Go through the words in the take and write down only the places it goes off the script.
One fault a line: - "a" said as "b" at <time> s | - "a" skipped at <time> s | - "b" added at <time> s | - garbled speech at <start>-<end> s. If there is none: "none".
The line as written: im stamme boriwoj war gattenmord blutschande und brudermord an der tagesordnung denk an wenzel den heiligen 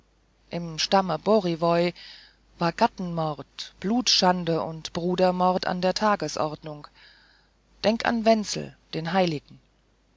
none